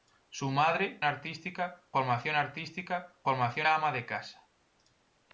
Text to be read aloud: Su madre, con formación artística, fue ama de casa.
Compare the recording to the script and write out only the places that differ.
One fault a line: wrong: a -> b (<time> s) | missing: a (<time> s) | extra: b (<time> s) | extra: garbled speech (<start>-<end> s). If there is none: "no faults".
wrong: con -> artística (1.0 s)
wrong: fue -> formación (3.2 s)